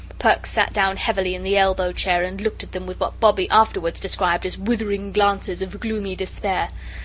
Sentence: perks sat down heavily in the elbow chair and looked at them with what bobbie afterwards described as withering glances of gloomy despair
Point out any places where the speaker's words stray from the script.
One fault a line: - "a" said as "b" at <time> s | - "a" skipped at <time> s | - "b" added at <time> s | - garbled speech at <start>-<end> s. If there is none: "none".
none